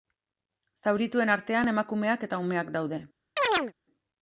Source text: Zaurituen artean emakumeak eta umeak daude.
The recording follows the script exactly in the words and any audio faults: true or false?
false